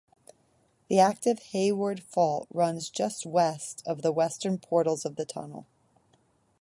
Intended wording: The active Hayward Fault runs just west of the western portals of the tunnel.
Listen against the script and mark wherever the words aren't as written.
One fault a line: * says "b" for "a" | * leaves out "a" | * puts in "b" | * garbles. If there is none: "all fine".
all fine